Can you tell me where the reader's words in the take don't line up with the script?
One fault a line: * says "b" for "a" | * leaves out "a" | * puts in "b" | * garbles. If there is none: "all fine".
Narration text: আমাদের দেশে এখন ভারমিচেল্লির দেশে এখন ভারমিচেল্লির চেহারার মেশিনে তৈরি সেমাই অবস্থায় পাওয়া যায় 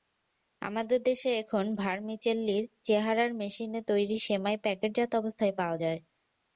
* leaves out "দেশে এখন ভারমিচেল্লির"
* puts in "প্যাকেটজাত"